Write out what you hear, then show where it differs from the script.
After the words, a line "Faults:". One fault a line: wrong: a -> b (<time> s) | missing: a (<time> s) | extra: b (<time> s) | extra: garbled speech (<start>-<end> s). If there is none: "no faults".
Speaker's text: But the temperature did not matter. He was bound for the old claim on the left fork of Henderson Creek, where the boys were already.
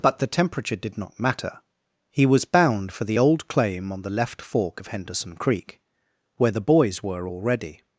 But the temperature did not matter. He was bound for the old claim on the left fork of Henderson Creek, where the boys were already.
Faults:
no faults